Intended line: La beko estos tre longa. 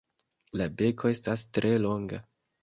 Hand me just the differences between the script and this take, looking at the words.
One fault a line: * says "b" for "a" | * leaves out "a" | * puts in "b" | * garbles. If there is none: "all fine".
* says "estas" for "estos"